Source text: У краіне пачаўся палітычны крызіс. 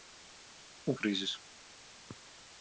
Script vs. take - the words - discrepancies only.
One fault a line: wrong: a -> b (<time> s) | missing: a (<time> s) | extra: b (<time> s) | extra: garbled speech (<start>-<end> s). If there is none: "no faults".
missing: краіне пачаўся палітычны (0.9 s)